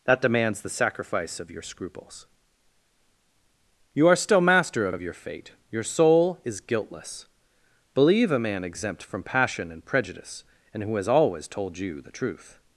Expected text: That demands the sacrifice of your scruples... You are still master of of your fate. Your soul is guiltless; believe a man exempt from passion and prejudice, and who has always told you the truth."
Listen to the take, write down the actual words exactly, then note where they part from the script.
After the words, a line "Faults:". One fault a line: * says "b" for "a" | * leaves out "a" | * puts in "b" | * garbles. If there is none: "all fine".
That demands the sacrifice of your scruples... You are still master of of your fate. Your soul is guiltless; believe a man exempt from passion and prejudice, and who has always told you the truth."
Faults:
all fine